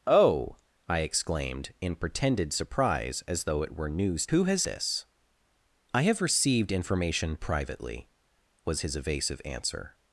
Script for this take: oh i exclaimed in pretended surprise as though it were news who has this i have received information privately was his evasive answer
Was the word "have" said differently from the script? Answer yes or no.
no